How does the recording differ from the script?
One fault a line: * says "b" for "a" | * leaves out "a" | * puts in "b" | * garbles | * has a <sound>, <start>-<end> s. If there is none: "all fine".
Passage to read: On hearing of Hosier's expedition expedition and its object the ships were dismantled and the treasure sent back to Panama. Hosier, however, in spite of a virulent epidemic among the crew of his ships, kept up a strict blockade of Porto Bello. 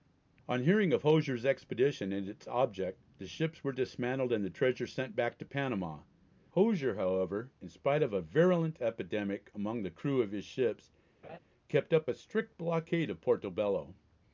* leaves out "expedition"
* has a laugh, 11.2-11.4 s